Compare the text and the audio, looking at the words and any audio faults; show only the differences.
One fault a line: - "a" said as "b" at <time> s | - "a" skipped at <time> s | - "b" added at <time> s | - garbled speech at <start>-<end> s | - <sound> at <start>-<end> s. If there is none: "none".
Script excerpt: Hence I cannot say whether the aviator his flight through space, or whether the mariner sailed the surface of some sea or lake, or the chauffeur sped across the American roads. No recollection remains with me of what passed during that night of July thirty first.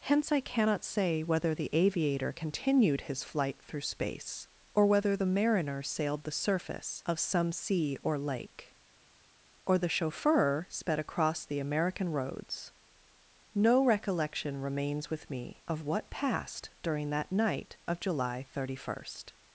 - "continued" added at 2.3 s